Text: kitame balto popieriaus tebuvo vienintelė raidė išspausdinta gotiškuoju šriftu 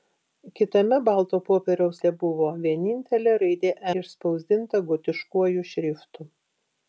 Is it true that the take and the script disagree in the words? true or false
false